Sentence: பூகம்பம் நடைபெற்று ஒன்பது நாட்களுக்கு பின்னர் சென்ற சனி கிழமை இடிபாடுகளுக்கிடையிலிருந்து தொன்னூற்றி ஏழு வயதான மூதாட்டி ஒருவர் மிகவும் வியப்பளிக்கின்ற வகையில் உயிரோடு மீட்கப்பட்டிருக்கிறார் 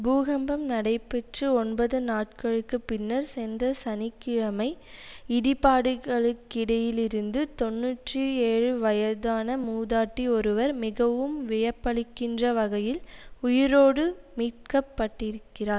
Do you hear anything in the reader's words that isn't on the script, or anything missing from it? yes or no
no